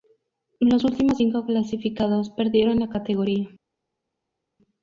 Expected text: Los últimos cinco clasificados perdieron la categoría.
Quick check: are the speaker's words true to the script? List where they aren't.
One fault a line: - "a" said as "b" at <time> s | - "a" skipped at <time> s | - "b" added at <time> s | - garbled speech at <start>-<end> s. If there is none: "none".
none